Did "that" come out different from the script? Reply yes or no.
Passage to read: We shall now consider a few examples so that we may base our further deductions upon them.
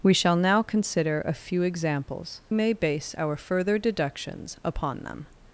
yes